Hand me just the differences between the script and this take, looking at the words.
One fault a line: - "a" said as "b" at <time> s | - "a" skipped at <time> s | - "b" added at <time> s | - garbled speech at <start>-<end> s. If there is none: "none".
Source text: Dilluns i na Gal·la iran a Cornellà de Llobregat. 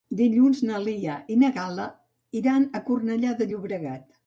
- "na Lia" added at 0.7 s